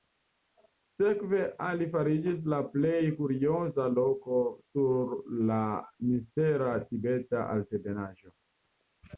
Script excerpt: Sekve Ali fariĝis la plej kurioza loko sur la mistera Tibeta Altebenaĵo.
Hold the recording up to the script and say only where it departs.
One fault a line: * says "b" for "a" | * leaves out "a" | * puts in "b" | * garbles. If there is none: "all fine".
all fine